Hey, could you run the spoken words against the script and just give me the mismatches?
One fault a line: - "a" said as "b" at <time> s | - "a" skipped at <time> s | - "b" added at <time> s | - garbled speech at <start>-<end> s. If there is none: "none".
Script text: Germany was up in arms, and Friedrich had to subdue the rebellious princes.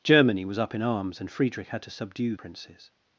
- "the rebellious" skipped at 2.4 s